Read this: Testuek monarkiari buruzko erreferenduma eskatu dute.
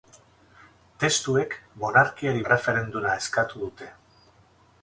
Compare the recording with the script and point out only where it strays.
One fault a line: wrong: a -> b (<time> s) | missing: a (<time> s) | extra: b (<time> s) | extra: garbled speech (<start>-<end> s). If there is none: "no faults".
missing: buruzko (2.4 s)